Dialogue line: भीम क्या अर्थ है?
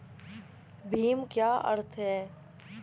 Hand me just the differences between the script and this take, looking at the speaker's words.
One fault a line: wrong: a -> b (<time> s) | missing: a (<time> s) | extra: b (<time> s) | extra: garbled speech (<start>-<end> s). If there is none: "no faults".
no faults